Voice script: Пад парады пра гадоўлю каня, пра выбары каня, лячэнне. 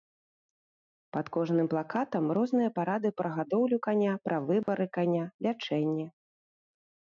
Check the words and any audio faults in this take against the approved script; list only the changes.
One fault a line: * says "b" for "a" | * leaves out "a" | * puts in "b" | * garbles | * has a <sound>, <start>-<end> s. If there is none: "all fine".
* puts in "кожным плакатам розныя"
* has a dropout, 4.6-4.7 s